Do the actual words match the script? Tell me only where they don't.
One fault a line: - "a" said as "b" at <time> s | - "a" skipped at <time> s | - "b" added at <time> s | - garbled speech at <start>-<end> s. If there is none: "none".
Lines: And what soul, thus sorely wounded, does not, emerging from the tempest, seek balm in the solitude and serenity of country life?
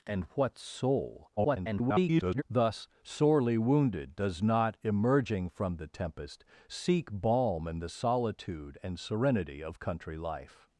- garbled speech at 1.4-2.4 s